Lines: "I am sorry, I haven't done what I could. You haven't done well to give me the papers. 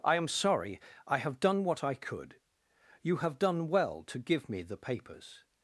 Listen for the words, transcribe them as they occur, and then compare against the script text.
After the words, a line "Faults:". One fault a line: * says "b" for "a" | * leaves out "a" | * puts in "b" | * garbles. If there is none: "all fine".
"I am sorry, I have done what I could. You have done well to give me the papers.
Faults:
* says "have" for "haven't"
* says "have" for "haven't"